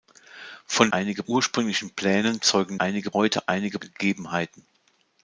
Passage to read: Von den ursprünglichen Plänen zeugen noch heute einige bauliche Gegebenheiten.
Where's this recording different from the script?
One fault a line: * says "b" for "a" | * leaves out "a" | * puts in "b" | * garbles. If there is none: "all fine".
* says "einige" for "den"
* says "einige" for "noch"
* leaves out "bauliche"